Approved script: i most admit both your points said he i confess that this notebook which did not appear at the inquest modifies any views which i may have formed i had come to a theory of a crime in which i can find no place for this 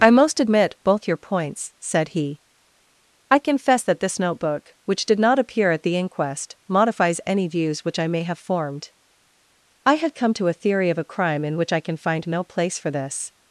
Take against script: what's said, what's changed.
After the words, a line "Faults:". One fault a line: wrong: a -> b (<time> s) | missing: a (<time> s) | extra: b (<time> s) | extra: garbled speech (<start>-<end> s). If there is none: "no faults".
i most admit both your points said he i confess that this notebook which did not appear at the inquest modifies any views which i may have formed i had come to a theory of a crime in which i can find no place for this
Faults:
no faults